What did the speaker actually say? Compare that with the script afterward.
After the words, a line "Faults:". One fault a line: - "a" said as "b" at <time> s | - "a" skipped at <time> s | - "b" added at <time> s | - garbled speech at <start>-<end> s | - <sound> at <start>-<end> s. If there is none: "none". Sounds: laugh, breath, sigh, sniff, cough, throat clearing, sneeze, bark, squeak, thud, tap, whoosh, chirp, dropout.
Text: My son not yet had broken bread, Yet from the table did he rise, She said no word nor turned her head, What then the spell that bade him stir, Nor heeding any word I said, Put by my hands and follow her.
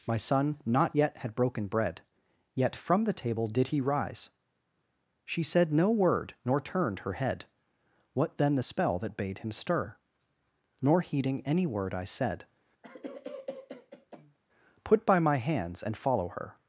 My son not yet had broken bread, Yet from the table did he rise, She said no word nor turned her head, What then the spell that bade him stir, Nor heeding any word I said, Put by my hands and follow her.
Faults:
- cough at 12.8-14.4 s